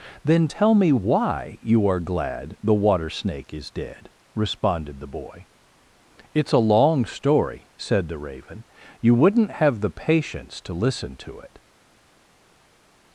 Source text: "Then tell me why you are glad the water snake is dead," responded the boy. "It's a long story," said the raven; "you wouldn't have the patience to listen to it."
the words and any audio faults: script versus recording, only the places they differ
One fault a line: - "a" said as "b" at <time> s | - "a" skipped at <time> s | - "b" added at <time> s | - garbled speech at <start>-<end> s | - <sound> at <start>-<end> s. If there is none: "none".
none